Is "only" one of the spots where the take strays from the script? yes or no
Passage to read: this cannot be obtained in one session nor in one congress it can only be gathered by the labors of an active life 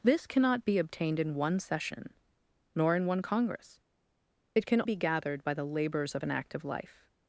yes